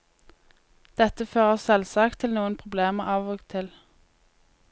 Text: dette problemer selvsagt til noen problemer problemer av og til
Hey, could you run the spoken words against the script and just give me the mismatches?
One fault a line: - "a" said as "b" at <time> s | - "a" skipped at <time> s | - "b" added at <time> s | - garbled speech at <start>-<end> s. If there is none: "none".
- "problemer" said as "fører" at 1.3 s
- "problemer" skipped at 3.1 s